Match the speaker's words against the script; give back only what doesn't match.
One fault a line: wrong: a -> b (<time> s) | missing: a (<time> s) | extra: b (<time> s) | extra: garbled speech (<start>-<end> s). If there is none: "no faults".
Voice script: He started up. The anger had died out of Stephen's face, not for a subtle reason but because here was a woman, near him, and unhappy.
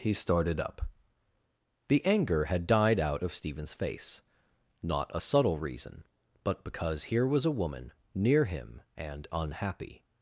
missing: for (5.1 s)